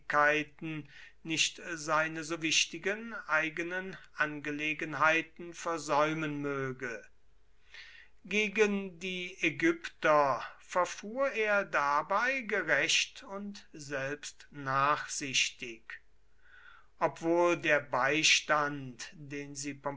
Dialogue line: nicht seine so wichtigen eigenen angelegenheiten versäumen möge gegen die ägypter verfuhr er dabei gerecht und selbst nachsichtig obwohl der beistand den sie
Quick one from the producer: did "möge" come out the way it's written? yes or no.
yes